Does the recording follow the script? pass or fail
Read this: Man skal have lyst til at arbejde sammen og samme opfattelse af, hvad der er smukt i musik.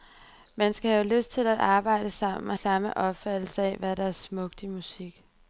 pass